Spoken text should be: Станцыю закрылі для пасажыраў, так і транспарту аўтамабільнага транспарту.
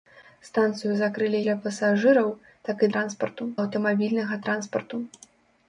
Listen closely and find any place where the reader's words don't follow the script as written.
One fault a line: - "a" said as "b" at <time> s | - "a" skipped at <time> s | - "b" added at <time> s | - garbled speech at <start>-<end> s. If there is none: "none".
none